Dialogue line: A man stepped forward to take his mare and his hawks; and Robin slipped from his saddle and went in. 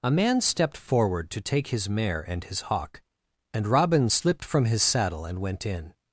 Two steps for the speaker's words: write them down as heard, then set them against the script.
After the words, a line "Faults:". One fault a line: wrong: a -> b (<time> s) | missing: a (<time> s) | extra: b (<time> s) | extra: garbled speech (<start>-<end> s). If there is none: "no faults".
A man stepped forward to take his mare and his hawk; and Robin slipped from his saddle and went in.
Faults:
wrong: hawks -> hawk (2.6 s)